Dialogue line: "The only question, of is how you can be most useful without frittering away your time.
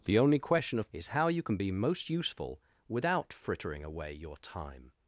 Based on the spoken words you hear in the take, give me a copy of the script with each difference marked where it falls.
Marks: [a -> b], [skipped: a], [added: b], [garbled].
"The only question, of is how you can be most useful without frittering away your time.